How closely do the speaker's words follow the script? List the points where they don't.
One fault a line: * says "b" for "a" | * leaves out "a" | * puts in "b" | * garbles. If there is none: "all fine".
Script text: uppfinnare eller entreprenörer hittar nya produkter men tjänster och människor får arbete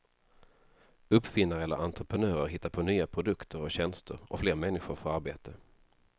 * puts in "på"
* says "och" for "men"
* puts in "fler"